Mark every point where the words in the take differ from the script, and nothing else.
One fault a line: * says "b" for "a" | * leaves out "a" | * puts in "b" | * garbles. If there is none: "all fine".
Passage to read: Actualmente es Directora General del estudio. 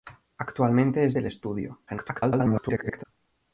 * leaves out "Directora General"
* garbles